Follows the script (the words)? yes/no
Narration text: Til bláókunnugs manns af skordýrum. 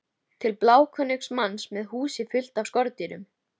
no